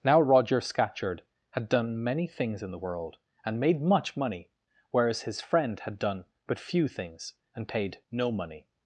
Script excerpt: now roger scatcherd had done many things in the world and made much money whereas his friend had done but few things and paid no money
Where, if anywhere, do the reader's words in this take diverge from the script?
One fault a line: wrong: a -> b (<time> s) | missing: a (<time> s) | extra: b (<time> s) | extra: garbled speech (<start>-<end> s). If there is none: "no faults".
no faults